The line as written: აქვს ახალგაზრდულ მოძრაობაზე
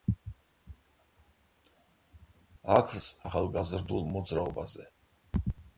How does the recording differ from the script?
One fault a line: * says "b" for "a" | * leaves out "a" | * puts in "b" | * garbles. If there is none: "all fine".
all fine